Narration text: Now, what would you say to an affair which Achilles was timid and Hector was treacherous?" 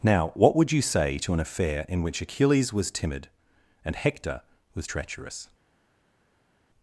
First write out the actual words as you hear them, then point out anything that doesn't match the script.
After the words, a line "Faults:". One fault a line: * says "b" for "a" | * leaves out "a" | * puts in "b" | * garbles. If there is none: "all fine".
Now, what would you say to an affair in which Achilles was timid and Hector was treacherous?"
Faults:
* puts in "in"